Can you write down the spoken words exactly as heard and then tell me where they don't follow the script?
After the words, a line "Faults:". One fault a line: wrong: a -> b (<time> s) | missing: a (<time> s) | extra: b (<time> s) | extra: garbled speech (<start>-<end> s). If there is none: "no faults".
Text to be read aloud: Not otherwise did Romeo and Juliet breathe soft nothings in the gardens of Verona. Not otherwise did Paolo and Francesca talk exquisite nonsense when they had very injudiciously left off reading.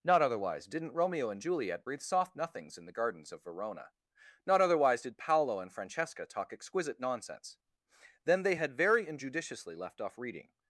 Not otherwise didn't Romeo and Juliet breathe soft nothings in the gardens of Verona. Not otherwise did Paolo and Francesca talk exquisite nonsense then they had very injudiciously left off reading.
Faults:
wrong: did -> didn't (0.7 s)
wrong: when -> then (8.2 s)